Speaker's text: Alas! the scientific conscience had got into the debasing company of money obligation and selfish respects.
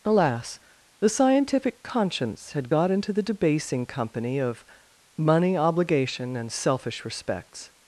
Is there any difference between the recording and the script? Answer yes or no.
no